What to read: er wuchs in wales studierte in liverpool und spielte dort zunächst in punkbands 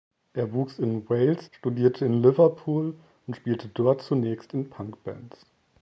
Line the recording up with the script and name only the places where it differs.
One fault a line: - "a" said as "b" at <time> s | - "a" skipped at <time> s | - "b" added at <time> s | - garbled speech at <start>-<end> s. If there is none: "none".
none